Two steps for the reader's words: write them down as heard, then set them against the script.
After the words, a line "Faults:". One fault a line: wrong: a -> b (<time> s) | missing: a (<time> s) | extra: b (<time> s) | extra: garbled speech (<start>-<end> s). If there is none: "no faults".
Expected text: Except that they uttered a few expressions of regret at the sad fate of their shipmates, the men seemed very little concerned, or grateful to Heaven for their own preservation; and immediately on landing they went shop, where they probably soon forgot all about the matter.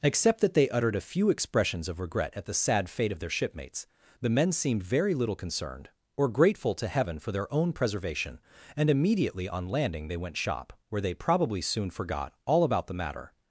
Except that they uttered a few expressions of regret at the sad fate of their shipmates, the men seemed very little concerned, or grateful to Heaven for their own preservation; and immediately on landing they went shop, where they probably soon forgot all about the matter.
Faults:
no faults